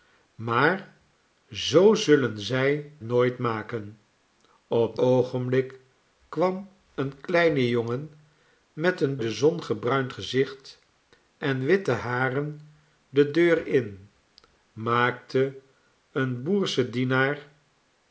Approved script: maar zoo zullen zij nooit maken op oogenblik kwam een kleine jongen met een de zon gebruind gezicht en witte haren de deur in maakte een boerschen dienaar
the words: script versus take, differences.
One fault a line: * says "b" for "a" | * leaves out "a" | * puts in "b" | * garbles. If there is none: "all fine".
all fine